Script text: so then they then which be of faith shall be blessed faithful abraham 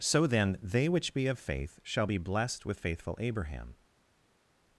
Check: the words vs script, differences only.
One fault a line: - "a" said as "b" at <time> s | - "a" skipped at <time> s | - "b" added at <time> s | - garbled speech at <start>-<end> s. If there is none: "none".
- "then" skipped at 0.9 s
- "with" added at 2.6 s